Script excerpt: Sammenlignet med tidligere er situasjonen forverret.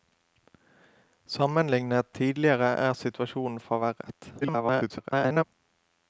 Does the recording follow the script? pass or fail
fail